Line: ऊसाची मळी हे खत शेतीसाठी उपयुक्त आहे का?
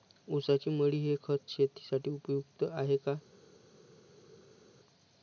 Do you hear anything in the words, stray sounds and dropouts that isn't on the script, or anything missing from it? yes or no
no